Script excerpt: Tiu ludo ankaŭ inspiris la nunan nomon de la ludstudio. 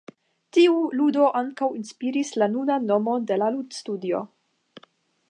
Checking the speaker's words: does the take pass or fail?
pass